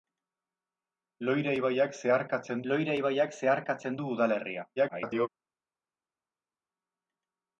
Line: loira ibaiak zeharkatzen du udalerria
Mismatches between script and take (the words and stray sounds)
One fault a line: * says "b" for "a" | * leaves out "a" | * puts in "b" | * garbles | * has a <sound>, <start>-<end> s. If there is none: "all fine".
* puts in "loira ibaiak zeharkatzen"
* garbles